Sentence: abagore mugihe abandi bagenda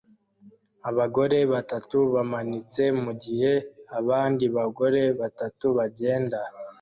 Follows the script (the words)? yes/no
no